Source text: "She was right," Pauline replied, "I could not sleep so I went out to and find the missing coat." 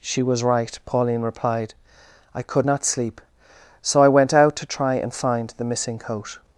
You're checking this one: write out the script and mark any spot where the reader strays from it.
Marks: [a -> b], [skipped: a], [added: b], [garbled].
"She was right," Pauline replied, "I could not sleep so I went out to [added: try] and find the missing coat."